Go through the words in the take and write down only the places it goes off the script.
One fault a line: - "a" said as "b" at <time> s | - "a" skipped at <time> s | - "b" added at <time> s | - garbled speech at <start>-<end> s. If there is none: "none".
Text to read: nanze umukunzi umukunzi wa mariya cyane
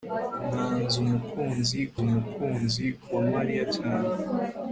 none